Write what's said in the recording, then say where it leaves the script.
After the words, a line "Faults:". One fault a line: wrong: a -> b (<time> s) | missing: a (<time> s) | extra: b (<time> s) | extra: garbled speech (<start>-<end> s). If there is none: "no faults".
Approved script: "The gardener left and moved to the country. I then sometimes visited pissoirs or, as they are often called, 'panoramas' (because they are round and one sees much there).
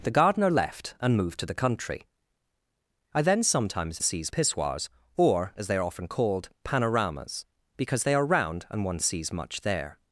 "The gardener left and moved to the country. I then sometimes sees pissoirs or, as they are often called, 'panoramas' (because they are round and one sees much there).
Faults:
wrong: visited -> sees (4.0 s)